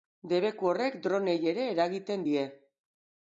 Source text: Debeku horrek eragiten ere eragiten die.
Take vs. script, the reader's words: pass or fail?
fail